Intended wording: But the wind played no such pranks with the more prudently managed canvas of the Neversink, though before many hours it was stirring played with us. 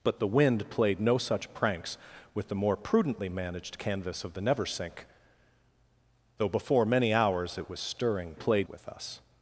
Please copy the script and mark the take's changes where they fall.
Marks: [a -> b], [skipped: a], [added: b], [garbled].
But the wind played no such pranks with the more prudently managed canvas of the Neversink, though before many hours it was stirring played with us.